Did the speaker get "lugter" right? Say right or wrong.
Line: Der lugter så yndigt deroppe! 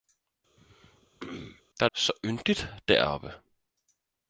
wrong